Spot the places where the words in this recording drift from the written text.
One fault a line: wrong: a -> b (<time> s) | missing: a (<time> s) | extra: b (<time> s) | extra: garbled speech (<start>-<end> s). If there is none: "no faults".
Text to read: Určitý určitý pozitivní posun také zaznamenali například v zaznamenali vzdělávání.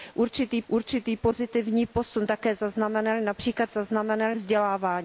no faults